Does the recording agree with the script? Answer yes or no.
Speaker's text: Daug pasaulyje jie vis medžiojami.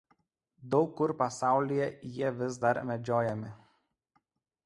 no